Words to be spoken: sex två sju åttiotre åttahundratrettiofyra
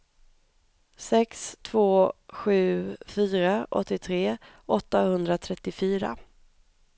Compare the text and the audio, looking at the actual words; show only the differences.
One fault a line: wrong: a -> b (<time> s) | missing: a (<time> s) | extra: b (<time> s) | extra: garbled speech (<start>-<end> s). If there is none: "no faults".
extra: fyra (3.0 s)